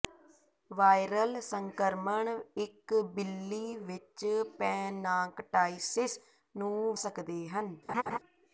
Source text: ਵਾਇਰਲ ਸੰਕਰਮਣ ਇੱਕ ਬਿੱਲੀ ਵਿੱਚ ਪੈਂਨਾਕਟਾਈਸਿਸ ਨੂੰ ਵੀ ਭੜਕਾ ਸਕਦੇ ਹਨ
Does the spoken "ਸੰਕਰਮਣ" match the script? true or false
true